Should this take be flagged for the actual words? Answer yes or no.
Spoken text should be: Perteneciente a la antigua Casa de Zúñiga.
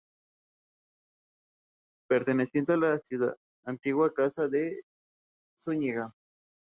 no